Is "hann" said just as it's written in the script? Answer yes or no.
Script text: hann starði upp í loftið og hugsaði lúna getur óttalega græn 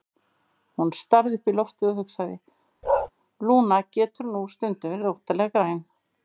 no